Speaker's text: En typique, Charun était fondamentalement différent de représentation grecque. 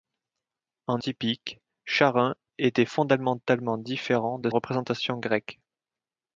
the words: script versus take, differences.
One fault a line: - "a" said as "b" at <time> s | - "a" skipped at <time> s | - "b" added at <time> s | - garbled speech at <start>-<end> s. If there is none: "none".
none